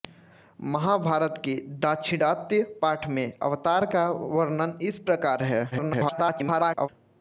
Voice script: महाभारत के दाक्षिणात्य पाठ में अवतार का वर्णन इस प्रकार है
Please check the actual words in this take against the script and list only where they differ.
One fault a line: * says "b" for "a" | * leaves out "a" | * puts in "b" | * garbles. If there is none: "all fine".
* garbles